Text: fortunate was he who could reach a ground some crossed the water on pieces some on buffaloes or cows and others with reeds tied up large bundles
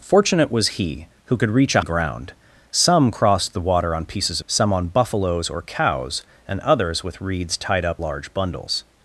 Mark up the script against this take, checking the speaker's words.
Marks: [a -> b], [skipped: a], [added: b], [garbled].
fortunate was he who could reach a ground some crossed the water on pieces some on buffaloes or cows and others with reeds tied up large bundles